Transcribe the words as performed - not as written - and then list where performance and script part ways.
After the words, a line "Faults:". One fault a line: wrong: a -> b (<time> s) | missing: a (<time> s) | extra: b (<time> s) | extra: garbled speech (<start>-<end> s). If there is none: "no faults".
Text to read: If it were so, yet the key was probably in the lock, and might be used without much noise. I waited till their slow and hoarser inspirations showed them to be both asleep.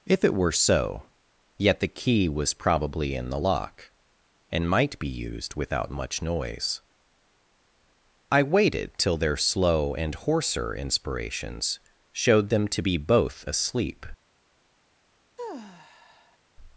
If it were so, yet the key was probably in the lock, and might be used without much noise. I waited till their slow and hoarser inspirations showed them to be both asleep.
Faults:
no faults